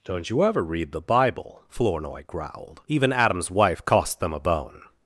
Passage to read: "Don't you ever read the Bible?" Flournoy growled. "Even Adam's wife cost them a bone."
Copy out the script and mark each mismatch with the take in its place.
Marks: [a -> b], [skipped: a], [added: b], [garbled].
"Don't you ever read the Bible?" Flournoy growled. "Even Adam's wife cost them a bone."